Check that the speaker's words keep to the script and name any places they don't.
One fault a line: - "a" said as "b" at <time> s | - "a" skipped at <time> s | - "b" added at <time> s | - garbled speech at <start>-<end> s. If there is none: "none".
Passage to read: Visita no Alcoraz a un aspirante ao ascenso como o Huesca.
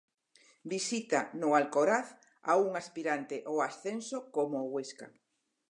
none